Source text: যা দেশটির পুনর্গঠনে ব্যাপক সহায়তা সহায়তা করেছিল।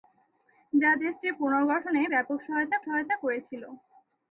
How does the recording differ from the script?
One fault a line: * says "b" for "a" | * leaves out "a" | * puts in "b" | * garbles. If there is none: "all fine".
all fine